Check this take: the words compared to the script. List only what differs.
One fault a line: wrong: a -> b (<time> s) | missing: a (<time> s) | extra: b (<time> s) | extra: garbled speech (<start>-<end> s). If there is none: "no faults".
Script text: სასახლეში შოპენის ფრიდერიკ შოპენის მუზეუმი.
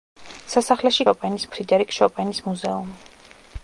no faults